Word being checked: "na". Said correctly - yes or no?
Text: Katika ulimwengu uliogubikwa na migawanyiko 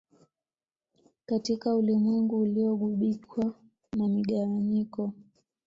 yes